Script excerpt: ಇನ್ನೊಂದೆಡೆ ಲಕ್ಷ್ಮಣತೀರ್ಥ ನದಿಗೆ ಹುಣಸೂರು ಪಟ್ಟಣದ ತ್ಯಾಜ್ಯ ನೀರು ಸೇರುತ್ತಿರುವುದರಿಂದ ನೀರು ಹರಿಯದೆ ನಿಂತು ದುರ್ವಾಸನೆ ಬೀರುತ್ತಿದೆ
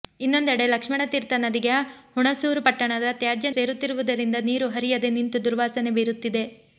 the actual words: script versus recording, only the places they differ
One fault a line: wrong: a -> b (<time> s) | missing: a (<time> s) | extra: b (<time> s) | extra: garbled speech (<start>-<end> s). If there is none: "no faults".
missing: ನೀರು (3.5 s)